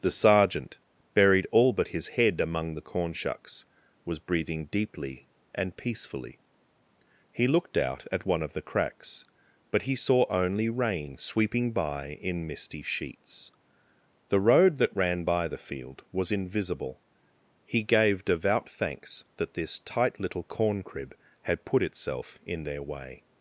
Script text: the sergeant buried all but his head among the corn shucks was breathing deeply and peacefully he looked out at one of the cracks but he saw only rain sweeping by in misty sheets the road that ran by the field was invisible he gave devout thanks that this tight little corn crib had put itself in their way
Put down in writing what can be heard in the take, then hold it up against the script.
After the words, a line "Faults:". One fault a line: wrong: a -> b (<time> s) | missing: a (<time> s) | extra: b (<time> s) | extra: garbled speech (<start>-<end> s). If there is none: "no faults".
the sergeant buried all but his head among the corn shucks was breathing deeply and peacefully he looked out at one of the cracks but he saw only rain sweeping by in misty sheets the road that ran by the field was invisible he gave devout thanks that this tight little corn crib had put itself in their way
Faults:
no faults